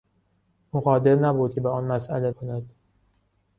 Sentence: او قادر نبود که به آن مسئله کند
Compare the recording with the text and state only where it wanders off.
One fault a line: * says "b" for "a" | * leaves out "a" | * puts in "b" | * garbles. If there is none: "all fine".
all fine